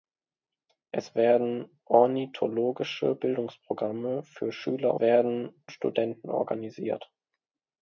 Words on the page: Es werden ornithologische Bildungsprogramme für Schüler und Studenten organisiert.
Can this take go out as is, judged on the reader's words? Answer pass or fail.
fail